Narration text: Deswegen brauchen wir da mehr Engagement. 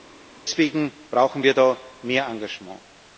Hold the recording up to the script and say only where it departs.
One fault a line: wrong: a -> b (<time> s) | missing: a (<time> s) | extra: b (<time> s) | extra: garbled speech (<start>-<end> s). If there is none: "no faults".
no faults